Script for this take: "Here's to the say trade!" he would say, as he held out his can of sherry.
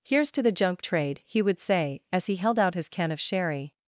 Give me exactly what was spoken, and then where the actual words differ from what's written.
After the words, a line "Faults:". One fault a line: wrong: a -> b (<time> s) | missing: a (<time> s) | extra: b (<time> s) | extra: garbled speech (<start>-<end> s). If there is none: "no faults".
"Here's to the junk trade!" he would say, as he held out his can of sherry.
Faults:
wrong: say -> junk (0.5 s)